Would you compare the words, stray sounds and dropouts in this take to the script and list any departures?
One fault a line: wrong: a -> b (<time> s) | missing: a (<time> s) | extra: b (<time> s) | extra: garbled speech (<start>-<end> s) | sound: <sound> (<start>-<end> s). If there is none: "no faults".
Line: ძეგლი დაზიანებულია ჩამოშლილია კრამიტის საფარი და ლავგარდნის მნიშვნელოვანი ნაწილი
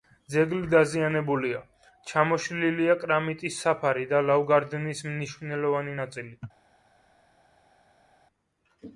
no faults